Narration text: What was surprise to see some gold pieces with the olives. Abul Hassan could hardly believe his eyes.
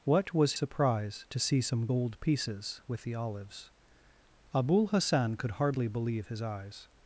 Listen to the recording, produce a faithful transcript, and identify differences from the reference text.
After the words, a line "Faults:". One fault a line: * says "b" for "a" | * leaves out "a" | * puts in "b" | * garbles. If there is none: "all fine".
What was surprise to see some gold pieces with the olives. Abul Hassan could hardly believe his eyes.
Faults:
all fine